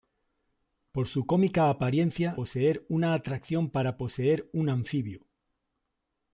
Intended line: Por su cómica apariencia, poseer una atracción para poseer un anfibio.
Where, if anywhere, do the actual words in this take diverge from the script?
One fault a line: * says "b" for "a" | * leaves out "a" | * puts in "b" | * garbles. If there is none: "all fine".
all fine